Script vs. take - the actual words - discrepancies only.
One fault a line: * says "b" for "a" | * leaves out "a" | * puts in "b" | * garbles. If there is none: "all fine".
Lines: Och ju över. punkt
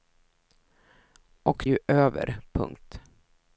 all fine